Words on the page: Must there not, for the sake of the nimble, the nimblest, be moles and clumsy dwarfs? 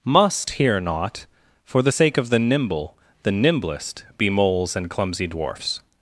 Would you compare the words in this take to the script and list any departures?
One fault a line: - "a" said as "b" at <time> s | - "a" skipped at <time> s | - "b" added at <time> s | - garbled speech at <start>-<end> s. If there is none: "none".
- "there" said as "here" at 0.5 s